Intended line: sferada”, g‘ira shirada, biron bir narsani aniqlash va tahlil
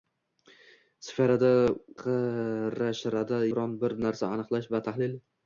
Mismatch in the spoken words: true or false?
false